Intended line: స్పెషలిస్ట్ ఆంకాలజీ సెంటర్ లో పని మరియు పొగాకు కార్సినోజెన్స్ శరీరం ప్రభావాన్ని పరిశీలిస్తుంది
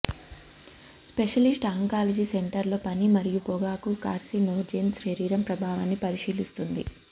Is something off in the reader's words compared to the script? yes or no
no